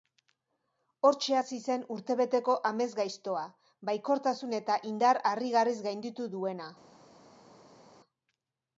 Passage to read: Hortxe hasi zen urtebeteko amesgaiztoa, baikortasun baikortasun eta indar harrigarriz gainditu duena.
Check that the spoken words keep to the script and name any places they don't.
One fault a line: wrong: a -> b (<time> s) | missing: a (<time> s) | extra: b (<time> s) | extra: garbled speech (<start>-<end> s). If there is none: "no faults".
missing: baikortasun (4.6 s)